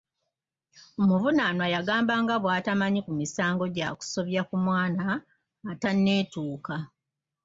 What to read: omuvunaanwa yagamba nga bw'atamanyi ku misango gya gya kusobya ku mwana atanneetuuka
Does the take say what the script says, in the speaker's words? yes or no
no